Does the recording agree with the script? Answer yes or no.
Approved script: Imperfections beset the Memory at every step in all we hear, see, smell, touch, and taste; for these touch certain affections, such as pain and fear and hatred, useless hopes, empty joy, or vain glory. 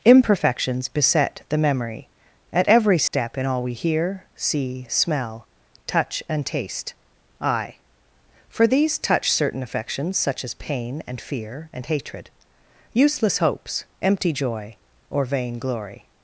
no